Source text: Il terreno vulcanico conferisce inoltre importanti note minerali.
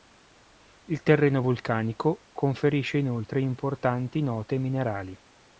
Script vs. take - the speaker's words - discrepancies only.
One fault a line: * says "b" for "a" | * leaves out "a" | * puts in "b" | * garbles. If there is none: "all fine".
all fine